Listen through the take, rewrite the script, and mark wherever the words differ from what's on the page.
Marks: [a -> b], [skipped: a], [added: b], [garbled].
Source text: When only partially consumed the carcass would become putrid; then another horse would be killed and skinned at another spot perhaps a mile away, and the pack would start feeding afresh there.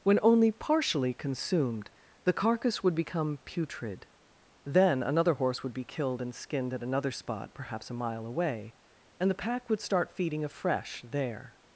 When only partially consumed the carcass would become putrid; then another horse would be killed and skinned at another spot perhaps a mile away, and the pack would start feeding afresh there.